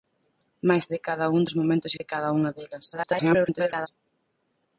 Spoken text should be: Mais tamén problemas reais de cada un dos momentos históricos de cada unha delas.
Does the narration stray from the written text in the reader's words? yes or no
yes